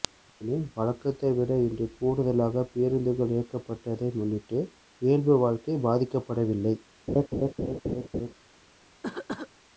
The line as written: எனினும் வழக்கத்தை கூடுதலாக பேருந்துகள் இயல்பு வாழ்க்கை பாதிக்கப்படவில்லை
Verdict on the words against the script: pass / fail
fail